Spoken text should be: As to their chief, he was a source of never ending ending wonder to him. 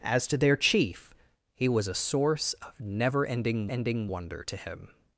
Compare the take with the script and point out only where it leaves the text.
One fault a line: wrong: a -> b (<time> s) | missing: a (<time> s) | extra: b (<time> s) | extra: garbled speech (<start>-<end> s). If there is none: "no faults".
no faults